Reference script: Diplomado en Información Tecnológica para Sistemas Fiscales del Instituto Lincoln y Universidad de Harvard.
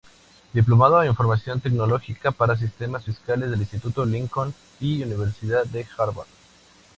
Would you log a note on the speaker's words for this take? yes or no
no